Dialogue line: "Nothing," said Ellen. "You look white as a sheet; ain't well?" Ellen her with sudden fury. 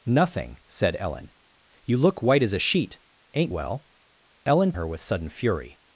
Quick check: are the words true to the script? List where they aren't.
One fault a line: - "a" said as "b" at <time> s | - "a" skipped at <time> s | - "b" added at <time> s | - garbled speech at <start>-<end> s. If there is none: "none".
none